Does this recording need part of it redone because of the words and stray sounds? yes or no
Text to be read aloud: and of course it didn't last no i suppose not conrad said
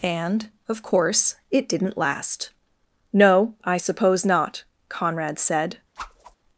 yes